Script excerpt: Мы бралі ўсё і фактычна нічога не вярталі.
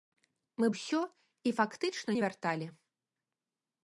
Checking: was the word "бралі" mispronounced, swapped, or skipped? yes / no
yes